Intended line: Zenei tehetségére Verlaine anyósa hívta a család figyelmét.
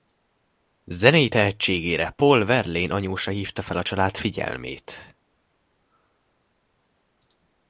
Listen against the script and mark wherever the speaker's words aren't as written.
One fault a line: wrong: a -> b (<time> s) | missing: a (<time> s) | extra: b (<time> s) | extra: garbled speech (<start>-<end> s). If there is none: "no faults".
extra: Paul (2.1 s)
extra: fel (3.6 s)